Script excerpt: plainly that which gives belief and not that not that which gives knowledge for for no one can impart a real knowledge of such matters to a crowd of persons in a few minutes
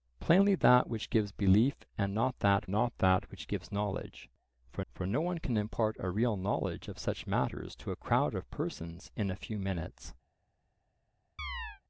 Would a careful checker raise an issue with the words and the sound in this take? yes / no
yes